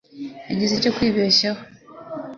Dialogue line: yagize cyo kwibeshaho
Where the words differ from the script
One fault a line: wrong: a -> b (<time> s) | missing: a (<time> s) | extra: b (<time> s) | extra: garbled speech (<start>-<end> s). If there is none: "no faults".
no faults